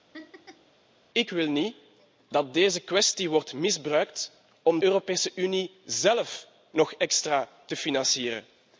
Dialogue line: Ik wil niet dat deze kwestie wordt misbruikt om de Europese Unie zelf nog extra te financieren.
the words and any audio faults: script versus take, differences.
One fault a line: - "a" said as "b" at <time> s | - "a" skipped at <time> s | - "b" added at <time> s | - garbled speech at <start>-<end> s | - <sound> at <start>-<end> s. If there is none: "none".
- laugh at 0.1-0.7 s
- "de" skipped at 4.8 s